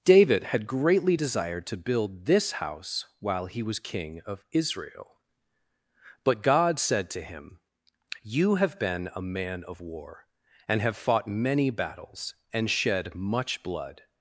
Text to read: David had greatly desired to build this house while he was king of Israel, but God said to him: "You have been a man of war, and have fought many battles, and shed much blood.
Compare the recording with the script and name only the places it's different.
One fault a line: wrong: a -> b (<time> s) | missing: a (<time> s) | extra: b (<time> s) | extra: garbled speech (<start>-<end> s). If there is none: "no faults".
no faults